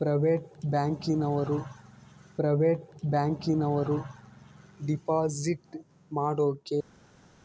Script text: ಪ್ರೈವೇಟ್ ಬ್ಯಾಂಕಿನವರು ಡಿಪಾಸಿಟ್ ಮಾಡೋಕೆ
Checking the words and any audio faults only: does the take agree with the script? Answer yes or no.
no